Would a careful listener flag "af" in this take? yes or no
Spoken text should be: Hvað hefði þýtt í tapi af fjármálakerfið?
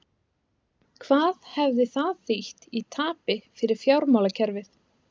yes